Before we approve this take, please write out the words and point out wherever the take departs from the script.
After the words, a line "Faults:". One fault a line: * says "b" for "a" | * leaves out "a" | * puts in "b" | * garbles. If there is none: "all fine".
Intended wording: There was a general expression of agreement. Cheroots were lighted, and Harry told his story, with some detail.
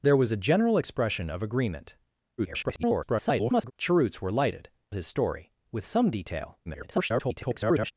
There was a general expression of agreement. [garbled] Cheroots were lighted, his story, with some detail. [garbled]
Faults:
* garbles
* leaves out "and Harry told"
* garbles